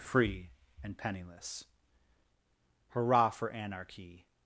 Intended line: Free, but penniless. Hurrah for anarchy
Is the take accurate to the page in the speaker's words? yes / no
no